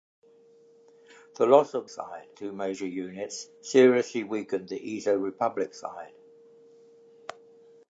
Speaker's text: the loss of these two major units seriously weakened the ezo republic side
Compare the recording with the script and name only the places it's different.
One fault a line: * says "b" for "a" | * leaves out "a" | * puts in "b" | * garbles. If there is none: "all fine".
* says "side" for "these"